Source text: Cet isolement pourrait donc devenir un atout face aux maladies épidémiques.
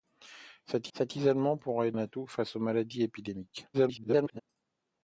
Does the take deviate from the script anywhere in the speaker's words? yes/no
yes